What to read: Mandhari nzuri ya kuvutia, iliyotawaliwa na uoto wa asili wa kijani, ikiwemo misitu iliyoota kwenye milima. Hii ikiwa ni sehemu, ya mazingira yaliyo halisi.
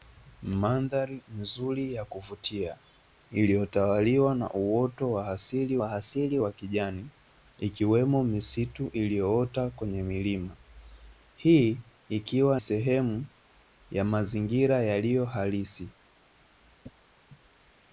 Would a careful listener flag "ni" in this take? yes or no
yes